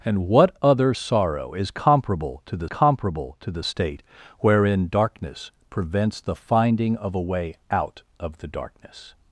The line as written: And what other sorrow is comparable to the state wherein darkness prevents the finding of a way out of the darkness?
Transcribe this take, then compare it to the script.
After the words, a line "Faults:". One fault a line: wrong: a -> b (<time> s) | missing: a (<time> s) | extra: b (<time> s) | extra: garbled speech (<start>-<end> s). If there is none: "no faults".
And what other sorrow is comparable to the comparable to the state wherein darkness prevents the finding of a way out of the darkness?
Faults:
extra: comparable to the (2.7 s)